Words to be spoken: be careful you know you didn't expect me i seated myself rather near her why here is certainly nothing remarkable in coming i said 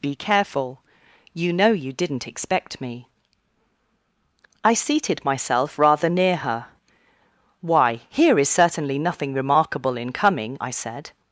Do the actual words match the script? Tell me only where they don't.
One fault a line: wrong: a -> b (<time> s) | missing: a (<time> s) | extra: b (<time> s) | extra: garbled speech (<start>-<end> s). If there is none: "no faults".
no faults